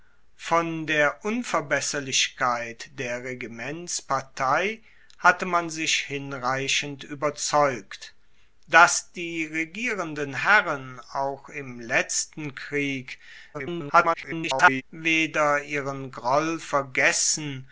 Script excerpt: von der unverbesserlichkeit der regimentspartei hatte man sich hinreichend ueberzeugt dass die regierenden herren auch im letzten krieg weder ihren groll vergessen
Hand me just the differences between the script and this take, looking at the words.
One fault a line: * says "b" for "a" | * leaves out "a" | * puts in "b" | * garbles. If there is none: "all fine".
* garbles